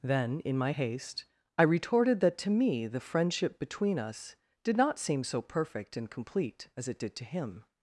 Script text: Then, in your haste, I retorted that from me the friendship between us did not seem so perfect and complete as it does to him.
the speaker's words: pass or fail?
fail